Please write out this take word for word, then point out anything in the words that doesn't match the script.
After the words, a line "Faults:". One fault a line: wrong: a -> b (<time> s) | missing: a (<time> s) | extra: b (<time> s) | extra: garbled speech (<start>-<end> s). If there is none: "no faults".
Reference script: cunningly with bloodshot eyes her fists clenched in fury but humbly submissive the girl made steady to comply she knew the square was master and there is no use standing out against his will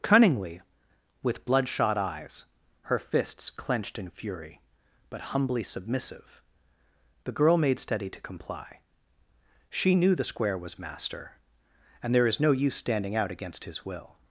cunningly with bloodshot eyes her fists clenched in fury but humbly submissive the girl made steady to comply she knew the square was master and there is no use standing out against his will
Faults:
no faults